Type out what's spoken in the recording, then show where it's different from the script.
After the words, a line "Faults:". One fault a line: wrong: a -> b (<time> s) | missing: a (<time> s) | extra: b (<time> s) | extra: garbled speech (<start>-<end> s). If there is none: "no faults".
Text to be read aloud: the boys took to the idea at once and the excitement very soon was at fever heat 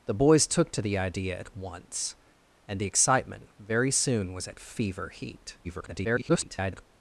the boys took to the idea at once and the excitement very soon was at fever heat [garbled]
Faults:
extra: garbled speech (5.6-6.9 s)